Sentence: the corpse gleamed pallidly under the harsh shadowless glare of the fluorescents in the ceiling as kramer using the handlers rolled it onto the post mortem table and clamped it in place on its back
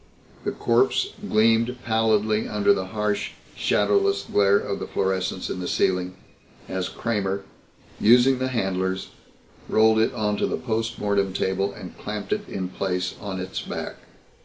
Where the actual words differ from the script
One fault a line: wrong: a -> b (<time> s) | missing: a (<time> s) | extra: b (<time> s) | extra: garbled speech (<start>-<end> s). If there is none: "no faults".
no faults